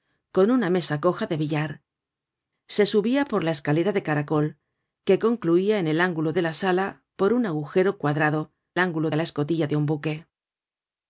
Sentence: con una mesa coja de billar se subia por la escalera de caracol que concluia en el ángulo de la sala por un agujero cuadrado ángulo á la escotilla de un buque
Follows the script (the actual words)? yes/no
yes